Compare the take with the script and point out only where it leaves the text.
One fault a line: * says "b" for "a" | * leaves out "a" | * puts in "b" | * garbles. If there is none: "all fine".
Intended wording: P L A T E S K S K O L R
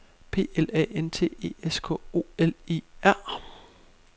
* puts in "N"
* leaves out "S K"
* puts in "E"